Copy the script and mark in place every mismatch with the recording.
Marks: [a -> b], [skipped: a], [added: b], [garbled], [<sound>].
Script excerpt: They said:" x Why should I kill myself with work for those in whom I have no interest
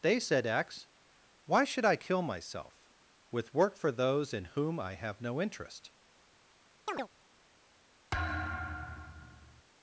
They said:" x Why should I kill myself with work for those in whom I have no interest [chirp] [thud]